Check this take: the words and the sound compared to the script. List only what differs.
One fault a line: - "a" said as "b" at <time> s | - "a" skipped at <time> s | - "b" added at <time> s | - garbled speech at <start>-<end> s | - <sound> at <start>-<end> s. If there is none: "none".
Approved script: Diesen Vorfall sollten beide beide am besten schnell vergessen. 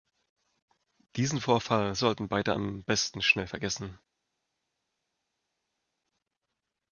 - "beide" skipped at 2.5 s